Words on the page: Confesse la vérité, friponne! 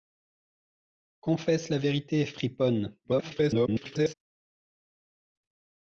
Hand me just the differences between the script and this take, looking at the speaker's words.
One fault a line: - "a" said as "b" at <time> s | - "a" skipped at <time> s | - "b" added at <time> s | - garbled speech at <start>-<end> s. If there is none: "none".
- garbled speech at 3.0-4.1 s